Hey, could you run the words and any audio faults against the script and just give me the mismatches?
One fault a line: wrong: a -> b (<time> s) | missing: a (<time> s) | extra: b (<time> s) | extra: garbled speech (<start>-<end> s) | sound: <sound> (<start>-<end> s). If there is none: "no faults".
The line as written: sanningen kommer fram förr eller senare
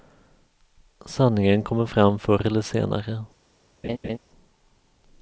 sound: laugh (3.8-4.2 s)